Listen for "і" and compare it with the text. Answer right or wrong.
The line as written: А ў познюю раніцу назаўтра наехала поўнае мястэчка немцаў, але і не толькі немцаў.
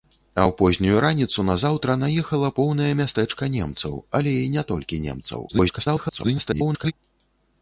right